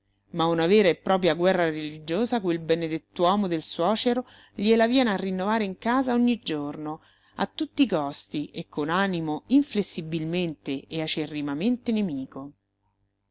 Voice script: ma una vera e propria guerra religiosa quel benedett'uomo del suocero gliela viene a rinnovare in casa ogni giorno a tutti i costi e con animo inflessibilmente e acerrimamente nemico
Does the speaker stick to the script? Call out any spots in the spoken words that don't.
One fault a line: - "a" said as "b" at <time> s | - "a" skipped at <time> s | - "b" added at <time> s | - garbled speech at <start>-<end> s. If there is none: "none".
none